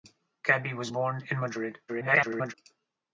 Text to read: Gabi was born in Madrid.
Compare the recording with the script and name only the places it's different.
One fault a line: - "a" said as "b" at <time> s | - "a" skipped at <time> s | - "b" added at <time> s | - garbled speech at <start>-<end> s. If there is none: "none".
- garbled speech at 1.9-2.5 s